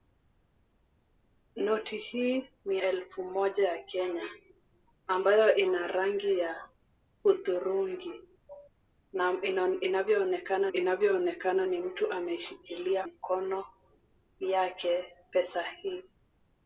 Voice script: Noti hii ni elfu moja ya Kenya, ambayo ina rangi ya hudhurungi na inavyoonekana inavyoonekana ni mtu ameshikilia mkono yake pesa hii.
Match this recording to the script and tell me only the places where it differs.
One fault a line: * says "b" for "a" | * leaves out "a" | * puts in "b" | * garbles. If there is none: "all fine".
all fine